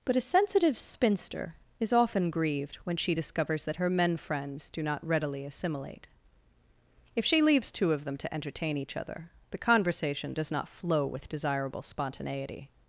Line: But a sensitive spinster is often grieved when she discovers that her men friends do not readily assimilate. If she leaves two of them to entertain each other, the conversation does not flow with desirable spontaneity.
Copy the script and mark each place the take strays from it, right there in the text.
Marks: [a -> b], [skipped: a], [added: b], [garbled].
But a sensitive spinster is often grieved when she discovers that her men friends do not readily assimilate. If she leaves two of them to entertain each other, the conversation does not flow with desirable spontaneity.